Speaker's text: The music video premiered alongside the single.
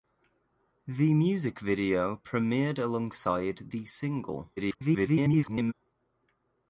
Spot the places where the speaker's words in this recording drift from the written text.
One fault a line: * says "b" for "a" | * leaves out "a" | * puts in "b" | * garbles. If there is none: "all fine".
* garbles